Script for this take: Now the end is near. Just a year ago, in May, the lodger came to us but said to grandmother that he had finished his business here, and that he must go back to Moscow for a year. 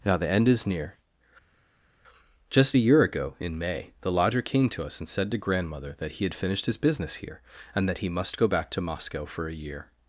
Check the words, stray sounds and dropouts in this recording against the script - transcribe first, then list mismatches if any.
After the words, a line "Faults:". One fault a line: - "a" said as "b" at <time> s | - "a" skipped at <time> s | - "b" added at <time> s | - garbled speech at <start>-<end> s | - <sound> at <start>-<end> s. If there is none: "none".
Now the end is near. Just a year ago, in May, the lodger came to us and said to grandmother that he had finished his business here, and that he must go back to Moscow for a year.
Faults:
- "but" said as "and" at 5.0 s